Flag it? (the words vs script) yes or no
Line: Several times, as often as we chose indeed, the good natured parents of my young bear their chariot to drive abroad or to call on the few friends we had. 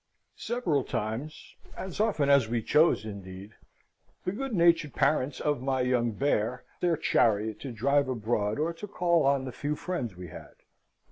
no